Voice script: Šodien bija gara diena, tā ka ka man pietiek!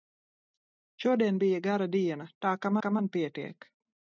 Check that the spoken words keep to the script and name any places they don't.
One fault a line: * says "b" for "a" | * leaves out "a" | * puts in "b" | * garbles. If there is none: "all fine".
all fine